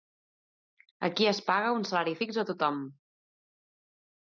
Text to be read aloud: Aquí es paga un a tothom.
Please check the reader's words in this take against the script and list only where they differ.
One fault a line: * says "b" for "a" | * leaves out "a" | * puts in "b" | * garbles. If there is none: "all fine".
* puts in "salari fix"